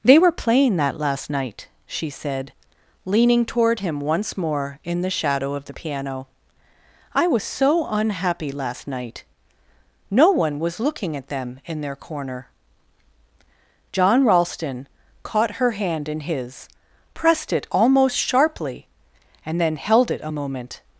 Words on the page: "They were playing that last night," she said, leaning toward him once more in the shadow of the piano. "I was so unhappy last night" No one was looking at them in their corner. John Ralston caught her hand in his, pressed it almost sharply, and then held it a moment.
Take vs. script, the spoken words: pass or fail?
pass